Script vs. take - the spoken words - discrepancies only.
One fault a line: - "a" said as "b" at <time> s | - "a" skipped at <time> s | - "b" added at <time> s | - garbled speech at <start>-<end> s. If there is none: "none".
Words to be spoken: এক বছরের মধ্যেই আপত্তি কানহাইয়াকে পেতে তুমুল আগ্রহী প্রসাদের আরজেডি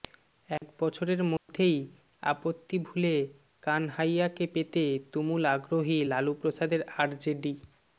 - "ভুলে" added at 2.8 s
- "লালু" added at 6.1 s